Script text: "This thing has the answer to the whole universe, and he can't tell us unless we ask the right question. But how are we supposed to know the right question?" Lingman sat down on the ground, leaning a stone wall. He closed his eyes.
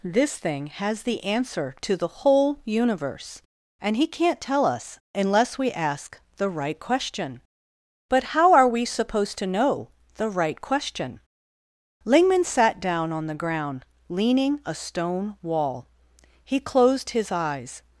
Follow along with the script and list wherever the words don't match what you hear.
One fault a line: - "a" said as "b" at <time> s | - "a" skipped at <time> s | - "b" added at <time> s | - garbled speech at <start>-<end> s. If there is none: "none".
none